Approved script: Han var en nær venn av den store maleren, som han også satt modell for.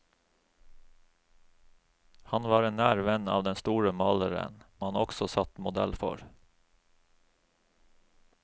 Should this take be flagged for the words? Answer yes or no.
yes